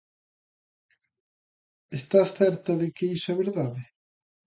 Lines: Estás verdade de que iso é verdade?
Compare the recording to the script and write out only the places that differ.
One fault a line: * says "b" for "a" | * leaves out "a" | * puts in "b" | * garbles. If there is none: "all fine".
* says "certa" for "verdade"